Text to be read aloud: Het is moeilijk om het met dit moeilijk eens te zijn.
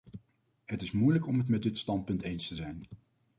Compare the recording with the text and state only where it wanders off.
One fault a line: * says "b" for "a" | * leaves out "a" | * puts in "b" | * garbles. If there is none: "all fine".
* says "standpunt" for "moeilijk"